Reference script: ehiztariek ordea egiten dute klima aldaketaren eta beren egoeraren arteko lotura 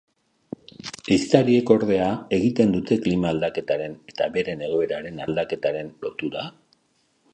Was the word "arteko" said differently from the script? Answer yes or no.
yes